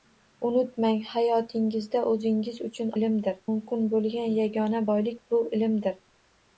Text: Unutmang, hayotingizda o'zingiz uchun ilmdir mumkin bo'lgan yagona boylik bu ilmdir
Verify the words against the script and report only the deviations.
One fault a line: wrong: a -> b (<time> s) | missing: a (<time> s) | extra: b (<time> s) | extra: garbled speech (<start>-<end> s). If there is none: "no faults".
no faults